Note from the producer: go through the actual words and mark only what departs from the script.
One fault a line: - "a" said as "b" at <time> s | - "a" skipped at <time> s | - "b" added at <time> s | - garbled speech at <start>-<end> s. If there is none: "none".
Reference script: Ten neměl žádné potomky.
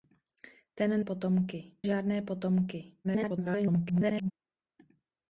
- "neměl" said as "potomky" at 1.0 s
- garbled speech at 3.0-4.3 s